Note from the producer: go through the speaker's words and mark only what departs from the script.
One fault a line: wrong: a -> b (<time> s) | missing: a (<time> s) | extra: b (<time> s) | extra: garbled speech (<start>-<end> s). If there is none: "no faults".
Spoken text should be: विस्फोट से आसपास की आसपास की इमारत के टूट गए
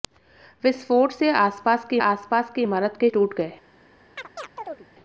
no faults